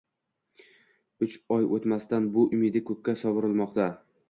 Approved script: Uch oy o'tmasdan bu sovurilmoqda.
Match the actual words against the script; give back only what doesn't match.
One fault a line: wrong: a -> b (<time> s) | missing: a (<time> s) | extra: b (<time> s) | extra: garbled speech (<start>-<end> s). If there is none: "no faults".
extra: umidi ko'kka (2.6 s)